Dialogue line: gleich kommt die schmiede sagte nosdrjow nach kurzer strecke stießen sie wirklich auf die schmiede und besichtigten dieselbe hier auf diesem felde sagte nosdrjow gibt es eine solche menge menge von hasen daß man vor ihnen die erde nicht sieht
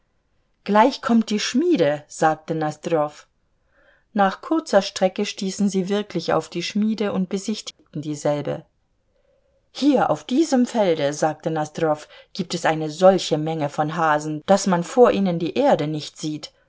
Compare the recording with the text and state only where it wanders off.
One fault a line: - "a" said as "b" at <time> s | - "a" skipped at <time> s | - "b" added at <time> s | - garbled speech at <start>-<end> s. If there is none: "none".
- "menge" skipped at 13.7 s